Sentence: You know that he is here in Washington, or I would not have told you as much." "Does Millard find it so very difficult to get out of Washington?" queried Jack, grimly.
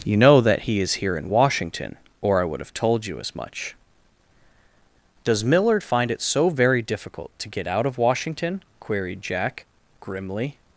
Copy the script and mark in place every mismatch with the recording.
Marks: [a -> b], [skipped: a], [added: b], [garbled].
You know that he is here in Washington, or I would [skipped: not] have told you as much." "Does Millard find it so very difficult to get out of Washington?" queried Jack, grimly.